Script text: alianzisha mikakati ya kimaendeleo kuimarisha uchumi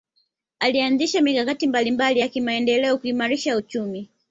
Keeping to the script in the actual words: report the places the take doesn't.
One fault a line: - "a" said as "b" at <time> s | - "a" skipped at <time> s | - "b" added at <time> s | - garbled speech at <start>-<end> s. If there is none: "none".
- "mbalimbali" added at 1.7 s